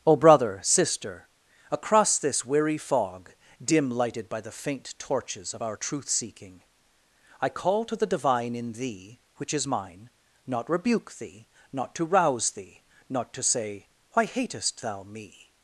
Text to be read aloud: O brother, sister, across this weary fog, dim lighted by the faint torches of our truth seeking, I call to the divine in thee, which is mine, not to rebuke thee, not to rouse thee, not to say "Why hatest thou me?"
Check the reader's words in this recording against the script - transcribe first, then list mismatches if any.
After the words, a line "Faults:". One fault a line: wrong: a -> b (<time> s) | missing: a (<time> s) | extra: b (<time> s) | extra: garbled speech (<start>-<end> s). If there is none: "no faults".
O brother, sister, across this weary fog, dim lighted by the faint torches of our truth seeking, I call to the divine in thee, which is mine, not rebuke thee, not to rouse thee, not to say "Why hatest thou me?"
Faults:
missing: to (10.7 s)